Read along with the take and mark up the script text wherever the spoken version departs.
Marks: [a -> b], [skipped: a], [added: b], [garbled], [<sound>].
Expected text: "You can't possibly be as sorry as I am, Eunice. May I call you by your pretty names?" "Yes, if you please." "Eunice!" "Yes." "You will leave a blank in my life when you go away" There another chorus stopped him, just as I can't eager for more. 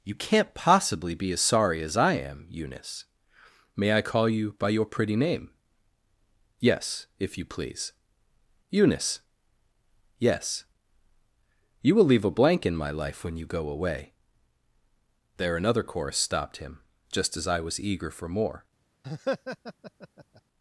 "You can't possibly be as sorry as I am, Eunice. May I call you by your pretty [names?" -> name] "Yes, if you please." "Eunice!" "Yes." "You will leave a blank in my life when you go away" There another chorus stopped him, just as I [can't -> was] eager for more. [laugh]